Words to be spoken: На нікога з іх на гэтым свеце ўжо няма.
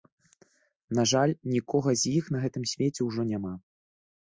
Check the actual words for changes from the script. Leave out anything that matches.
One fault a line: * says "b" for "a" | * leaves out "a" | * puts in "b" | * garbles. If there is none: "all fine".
* puts in "жаль"